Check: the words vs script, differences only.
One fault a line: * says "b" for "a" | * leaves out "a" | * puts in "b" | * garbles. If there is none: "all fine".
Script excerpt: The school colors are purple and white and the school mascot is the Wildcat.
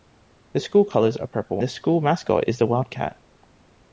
* leaves out "and white and"